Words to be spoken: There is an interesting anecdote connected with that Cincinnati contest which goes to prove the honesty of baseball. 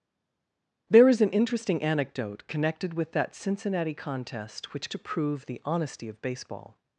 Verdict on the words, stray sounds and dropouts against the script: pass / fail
fail